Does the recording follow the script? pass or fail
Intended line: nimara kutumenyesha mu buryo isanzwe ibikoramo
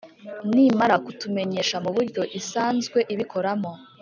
pass